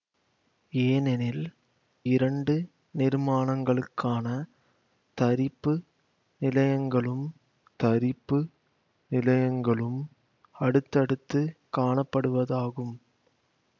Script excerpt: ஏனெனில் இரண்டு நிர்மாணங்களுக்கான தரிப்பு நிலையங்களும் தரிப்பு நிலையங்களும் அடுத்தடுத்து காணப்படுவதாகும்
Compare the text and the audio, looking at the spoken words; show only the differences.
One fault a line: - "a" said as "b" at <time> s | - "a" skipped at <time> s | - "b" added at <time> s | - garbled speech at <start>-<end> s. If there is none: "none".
none